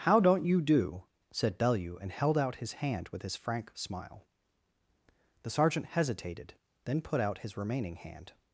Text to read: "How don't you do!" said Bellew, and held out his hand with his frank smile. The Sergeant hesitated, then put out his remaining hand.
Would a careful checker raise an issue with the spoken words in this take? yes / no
no